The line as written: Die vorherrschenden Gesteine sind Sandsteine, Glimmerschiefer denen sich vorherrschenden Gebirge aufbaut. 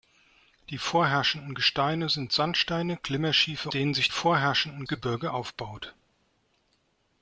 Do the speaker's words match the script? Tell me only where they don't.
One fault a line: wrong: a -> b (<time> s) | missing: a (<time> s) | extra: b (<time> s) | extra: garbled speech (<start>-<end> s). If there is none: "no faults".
no faults